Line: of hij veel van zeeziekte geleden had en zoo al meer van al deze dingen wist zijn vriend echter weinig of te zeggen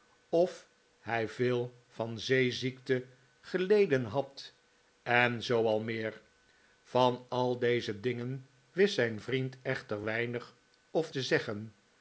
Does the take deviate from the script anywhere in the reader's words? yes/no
no